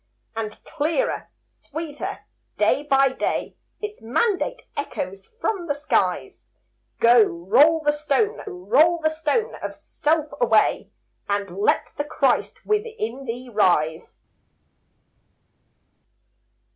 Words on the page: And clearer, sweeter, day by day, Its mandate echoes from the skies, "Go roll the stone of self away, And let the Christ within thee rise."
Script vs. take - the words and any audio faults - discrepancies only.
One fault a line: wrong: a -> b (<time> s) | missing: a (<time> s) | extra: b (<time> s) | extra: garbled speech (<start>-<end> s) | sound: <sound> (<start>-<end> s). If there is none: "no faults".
extra: roll the stone (8.4 s)